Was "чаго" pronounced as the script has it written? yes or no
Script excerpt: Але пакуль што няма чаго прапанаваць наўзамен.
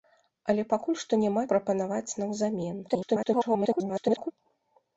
no